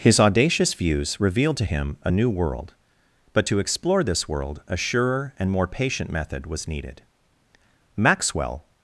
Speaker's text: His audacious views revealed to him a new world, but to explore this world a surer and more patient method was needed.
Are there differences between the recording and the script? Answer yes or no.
yes